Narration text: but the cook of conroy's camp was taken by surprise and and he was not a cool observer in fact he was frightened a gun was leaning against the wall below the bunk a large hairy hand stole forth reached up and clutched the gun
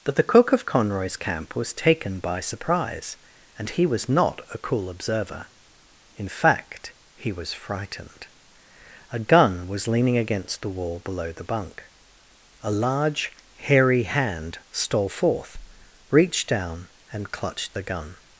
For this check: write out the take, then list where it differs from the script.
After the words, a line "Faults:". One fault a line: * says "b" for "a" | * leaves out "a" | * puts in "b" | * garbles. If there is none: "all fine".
but the cook of conroy's camp was taken by surprise and he was not a cool observer in fact he was frightened a gun was leaning against the wall below the bunk a large hairy hand stole forth reached down and clutched the gun
Faults:
* leaves out "and"
* says "down" for "up"